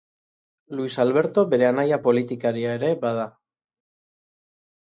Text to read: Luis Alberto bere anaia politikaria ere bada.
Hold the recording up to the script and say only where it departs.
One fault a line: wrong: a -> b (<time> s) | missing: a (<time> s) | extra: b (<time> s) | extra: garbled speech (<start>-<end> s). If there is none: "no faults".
no faults